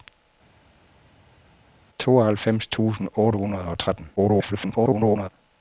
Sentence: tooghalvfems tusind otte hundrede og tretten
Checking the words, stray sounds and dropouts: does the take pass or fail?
fail